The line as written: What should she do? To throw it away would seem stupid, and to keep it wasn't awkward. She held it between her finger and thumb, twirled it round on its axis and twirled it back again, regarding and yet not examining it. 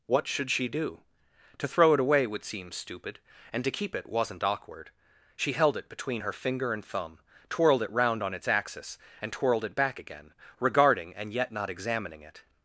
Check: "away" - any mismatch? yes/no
no